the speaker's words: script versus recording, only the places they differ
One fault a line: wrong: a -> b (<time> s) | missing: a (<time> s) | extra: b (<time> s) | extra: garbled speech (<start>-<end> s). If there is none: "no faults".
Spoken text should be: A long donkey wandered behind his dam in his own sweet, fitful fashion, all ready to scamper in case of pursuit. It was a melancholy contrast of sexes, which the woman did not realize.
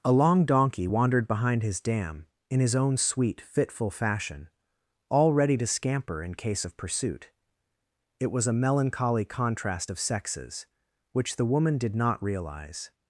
no faults